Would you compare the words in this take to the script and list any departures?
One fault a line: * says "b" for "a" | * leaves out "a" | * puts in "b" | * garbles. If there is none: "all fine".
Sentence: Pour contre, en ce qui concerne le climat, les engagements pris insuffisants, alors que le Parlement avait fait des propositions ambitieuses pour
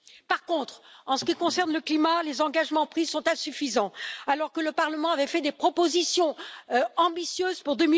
* says "Par" for "Pour"
* puts in "sont"